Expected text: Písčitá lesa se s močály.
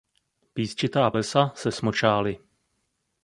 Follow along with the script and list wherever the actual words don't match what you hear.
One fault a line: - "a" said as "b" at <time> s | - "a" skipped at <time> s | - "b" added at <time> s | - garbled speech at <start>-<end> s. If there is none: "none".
none